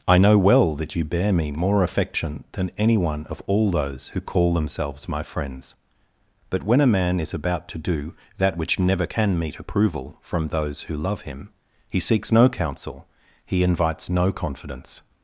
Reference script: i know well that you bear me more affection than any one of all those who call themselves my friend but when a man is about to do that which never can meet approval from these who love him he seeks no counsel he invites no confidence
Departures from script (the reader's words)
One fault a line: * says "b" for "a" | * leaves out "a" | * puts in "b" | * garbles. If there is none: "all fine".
* says "friends" for "friend"
* says "those" for "these"